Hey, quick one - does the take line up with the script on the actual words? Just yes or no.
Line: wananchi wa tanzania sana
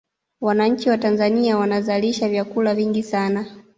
no